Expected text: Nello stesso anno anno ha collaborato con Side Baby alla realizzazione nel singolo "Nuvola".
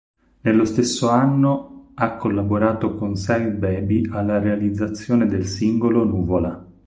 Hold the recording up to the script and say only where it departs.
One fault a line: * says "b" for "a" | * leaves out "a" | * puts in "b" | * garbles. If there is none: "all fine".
* leaves out "anno"
* says "del" for "nel"